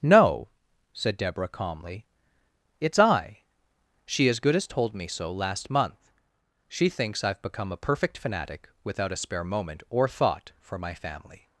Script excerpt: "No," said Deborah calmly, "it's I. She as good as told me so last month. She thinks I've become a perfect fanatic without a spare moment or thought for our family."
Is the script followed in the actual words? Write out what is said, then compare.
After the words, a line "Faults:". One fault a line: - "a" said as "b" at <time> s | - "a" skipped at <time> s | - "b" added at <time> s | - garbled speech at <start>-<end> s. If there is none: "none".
"No," said Deborah calmly, "it's I. She as good as told me so last month. She thinks I've become a perfect fanatic without a spare moment or thought for my family."
Faults:
- "our" said as "my" at 10.8 s